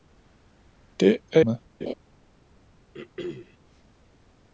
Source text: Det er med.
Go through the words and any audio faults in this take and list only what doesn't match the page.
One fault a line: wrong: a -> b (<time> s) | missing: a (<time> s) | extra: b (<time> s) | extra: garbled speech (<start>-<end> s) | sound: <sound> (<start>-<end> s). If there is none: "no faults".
sound: laugh (1.8-1.9 s)
sound: throat clearing (2.9-3.6 s)